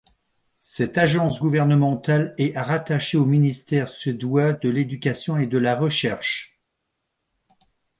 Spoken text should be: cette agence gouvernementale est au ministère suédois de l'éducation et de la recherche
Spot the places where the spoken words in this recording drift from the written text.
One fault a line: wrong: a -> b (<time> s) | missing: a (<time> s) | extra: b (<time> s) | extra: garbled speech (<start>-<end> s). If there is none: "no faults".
extra: rattachée (2.5 s)